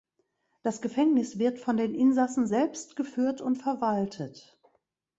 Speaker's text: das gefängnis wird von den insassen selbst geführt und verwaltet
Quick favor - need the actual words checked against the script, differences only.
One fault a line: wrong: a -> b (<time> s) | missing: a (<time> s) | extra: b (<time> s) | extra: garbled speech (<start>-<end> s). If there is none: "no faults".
no faults